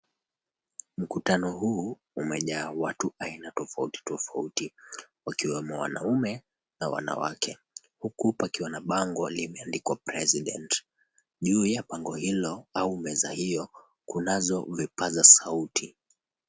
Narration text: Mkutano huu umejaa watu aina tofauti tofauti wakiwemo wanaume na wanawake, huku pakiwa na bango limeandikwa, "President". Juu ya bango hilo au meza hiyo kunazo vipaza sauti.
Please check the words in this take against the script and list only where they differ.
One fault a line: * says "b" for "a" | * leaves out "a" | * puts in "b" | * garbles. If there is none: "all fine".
all fine